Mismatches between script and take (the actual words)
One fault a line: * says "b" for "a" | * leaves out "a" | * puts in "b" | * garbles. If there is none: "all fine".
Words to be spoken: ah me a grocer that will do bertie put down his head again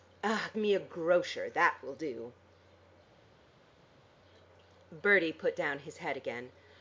all fine